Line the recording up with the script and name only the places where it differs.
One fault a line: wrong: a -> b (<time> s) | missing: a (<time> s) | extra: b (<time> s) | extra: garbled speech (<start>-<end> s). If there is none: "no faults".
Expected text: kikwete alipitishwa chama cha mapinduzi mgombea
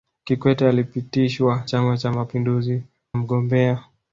no faults